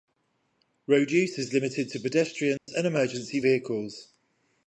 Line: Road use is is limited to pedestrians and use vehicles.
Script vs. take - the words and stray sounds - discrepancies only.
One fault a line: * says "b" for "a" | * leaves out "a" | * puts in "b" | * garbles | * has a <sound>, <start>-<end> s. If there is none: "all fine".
* leaves out "is"
* has a dropout, 2.6-2.7 s
* says "emergency" for "use"